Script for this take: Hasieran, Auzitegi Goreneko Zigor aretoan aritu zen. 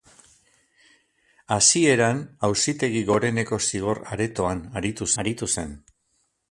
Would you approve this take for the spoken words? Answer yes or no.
no